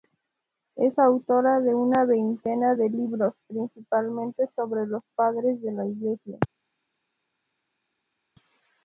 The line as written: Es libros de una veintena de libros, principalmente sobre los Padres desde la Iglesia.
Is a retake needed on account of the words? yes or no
yes